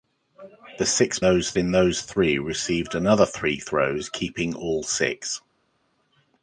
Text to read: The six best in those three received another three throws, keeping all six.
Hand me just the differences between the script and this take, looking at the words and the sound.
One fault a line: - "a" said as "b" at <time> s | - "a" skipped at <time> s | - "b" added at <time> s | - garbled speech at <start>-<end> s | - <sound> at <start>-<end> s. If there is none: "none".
- "best" said as "those" at 1.2 s